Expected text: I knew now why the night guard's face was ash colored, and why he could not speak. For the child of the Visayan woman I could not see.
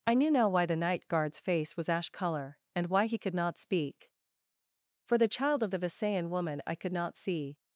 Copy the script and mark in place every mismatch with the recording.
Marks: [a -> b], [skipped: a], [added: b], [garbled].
I knew now why the night guard's face was ash [colored, -> color] and why he could not speak. For the child of the Visayan woman I could not see.